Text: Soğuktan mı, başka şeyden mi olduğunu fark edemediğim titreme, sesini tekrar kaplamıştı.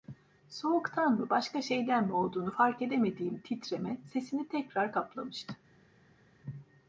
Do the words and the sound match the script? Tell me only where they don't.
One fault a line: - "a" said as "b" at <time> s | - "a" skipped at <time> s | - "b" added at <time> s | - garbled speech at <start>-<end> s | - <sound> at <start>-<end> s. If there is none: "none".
none